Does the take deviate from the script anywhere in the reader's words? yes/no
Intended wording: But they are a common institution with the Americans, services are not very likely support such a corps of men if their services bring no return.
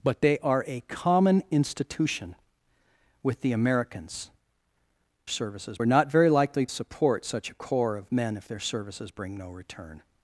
no